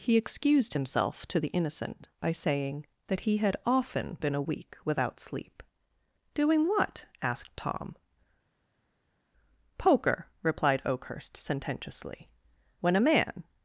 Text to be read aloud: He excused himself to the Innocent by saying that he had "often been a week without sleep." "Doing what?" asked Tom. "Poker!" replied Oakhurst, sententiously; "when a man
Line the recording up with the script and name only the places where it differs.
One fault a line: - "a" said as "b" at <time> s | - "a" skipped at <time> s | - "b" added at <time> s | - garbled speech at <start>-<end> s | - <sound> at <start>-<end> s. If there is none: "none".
none